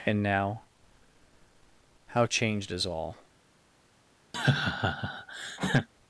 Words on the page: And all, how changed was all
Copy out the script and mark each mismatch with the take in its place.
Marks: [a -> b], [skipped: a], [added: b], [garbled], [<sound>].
And [all, -> now] how changed [was -> is] all [laugh]